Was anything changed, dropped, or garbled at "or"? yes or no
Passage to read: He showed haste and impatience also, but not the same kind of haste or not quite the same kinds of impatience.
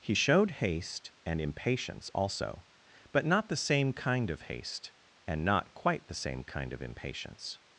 yes